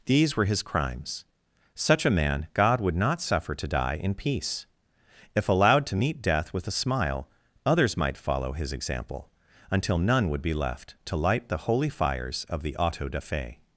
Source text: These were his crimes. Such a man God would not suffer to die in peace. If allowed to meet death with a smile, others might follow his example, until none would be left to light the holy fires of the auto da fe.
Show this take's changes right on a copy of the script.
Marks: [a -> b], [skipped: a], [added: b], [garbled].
These were his crimes. Such a man God would not suffer to die in peace. If allowed to meet death with a smile, others might follow his example, until none would be left to light the holy fires of the auto da fe.